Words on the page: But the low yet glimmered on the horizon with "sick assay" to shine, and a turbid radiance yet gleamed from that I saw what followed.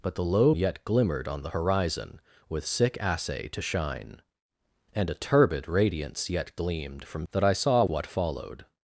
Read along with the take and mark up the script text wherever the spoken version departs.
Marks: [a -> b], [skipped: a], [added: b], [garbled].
But the low yet glimmered on the horizon with "sick assay" to shine, and a turbid radiance yet gleamed from that I saw what followed.